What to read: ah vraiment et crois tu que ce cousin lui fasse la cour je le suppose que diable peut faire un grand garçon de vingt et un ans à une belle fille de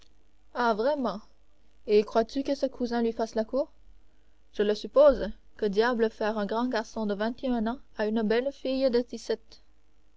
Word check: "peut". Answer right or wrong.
wrong